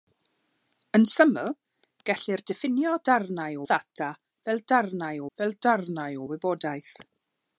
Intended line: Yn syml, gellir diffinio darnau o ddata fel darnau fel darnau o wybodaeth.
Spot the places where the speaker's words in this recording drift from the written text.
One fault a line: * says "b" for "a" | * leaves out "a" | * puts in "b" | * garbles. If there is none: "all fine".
all fine